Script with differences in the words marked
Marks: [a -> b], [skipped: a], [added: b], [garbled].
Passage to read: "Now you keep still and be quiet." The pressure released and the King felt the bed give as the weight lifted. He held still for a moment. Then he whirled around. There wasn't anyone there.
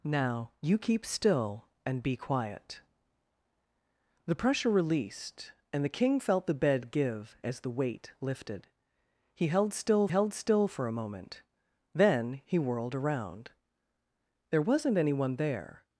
"Now you keep still and be quiet." The pressure released and the King felt the bed give as the weight lifted. He held still [added: held still] for a moment. Then he whirled around. There wasn't anyone there.